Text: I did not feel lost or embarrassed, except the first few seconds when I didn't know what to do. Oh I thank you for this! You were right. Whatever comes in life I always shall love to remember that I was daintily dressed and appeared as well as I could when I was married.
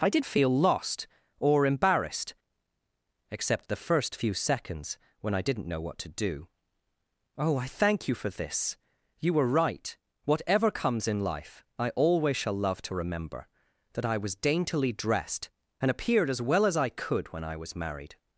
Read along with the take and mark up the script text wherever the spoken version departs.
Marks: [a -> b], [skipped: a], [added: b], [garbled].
I did [skipped: not] feel lost or embarrassed, except the first few seconds when I didn't know what to do. Oh I thank you for this! You were right. Whatever comes in life I always shall love to remember that I was daintily dressed and appeared as well as I could when I was married.